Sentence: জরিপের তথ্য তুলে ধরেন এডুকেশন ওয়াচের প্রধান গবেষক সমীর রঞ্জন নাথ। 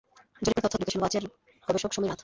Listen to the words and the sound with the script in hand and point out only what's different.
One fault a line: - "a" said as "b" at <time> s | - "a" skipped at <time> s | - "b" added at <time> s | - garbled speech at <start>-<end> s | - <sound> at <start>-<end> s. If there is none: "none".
- dropout at 0.5-0.6 s
- "তুলে ধরেন" skipped at 0.8 s
- "প্রধান" skipped at 1.2 s
- "রঞ্জন" skipped at 2.1 s